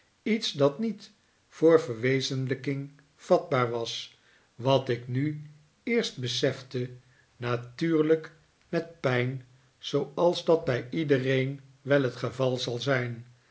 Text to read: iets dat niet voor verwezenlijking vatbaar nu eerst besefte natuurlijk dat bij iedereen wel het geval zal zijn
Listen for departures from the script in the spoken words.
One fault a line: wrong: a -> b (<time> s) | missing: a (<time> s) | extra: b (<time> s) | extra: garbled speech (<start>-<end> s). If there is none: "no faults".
extra: was wat ik (3.7 s)
extra: met pijn zooals (8.7 s)